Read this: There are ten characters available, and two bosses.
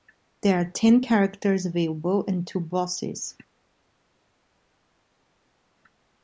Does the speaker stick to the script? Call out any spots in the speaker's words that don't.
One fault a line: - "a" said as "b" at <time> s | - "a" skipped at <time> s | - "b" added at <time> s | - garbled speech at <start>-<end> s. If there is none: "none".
none